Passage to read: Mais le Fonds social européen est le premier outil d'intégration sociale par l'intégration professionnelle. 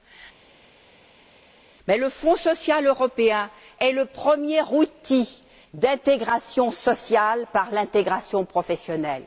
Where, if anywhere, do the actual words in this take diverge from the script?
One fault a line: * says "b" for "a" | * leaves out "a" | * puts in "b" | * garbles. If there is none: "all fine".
all fine